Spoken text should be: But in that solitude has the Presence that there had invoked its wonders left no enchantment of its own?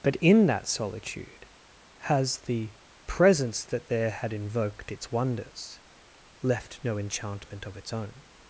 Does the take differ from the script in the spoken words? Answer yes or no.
no